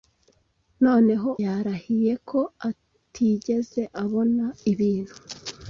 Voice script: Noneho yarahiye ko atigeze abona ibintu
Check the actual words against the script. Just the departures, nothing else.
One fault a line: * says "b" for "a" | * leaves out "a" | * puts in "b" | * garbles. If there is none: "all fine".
all fine